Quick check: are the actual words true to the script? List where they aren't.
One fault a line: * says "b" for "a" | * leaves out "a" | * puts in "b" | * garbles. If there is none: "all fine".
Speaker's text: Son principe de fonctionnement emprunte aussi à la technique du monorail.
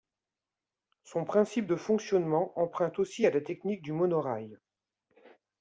all fine